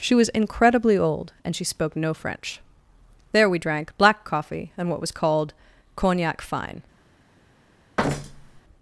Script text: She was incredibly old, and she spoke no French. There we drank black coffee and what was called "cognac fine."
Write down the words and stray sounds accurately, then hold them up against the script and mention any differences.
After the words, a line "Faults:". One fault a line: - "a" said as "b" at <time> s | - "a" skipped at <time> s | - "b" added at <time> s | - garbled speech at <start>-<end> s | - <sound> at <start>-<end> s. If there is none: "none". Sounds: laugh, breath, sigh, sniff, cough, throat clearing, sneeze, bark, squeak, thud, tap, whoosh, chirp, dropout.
She was incredibly old, and she spoke no French. There we drank black coffee and what was called "cognac fine."
Faults:
- thud at 8.0-8.6 s